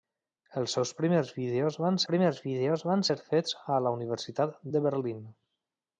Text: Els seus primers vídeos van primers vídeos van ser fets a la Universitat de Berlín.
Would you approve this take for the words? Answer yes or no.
yes